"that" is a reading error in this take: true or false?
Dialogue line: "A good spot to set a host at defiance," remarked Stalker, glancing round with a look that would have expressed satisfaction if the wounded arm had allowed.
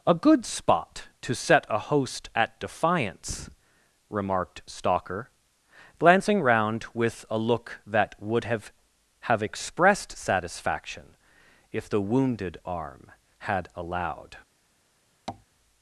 false